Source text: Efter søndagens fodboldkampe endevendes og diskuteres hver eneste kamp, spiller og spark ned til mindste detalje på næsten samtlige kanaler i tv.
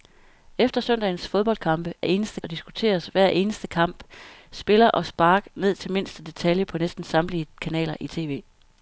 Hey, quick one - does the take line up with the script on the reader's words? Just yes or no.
no